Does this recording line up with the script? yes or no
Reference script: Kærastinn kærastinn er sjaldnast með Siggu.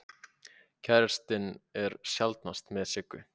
no